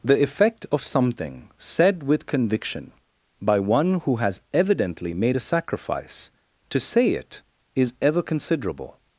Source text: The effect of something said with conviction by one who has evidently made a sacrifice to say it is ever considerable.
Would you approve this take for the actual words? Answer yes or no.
yes